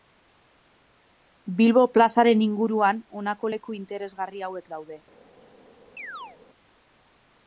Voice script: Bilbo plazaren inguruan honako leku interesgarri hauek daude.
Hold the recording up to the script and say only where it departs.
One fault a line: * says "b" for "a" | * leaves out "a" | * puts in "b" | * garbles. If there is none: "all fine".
all fine